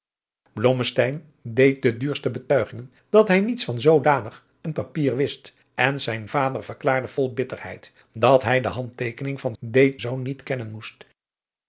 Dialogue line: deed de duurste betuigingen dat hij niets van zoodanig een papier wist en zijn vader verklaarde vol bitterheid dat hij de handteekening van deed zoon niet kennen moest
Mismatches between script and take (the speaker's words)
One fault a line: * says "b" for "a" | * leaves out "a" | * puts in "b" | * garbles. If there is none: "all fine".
all fine